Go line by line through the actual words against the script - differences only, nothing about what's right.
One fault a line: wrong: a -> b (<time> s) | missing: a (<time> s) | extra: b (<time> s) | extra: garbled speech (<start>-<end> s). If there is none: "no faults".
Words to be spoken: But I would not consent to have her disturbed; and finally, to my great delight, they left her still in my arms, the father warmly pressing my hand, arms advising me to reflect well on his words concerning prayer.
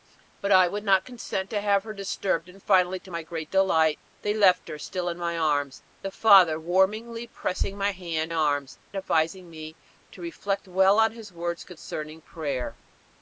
no faults